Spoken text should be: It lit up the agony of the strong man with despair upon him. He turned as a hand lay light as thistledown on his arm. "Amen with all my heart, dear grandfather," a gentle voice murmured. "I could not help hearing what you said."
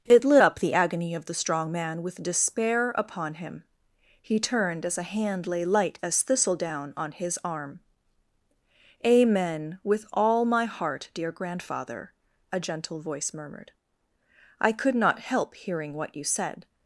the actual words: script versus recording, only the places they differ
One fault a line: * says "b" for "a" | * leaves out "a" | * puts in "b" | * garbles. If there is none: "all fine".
all fine